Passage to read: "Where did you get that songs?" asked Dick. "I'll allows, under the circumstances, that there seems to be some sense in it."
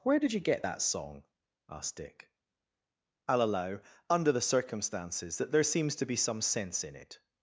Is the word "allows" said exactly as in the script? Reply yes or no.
no